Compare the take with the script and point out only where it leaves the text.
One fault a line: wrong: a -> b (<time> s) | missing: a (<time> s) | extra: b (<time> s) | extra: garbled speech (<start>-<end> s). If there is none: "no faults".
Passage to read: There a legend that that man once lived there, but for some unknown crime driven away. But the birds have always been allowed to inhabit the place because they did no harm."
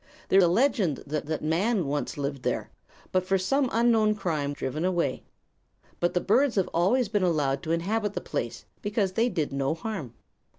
no faults